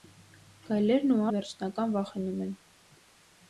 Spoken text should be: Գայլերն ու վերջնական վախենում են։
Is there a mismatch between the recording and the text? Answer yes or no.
no